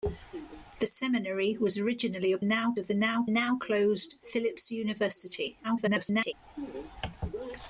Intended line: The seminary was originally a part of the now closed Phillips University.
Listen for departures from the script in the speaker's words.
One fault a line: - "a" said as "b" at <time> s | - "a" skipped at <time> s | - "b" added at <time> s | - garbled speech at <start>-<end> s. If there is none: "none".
- "part" said as "now" at 2.4 s
- "now" added at 3.3 s
- garbled speech at 5.6-6.3 s